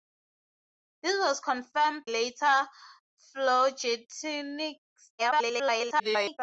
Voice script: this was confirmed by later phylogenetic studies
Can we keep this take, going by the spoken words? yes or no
no